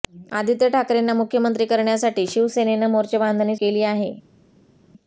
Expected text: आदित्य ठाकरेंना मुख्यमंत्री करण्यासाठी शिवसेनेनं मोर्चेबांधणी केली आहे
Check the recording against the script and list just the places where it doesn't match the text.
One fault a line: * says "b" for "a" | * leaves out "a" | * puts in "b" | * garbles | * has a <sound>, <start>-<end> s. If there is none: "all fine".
all fine